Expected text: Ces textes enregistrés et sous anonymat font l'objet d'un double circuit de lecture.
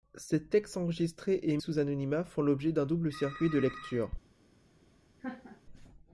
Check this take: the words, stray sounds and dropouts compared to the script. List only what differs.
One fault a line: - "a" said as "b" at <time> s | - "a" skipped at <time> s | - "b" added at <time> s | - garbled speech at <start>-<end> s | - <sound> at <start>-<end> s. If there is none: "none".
- laugh at 5.2-5.6 s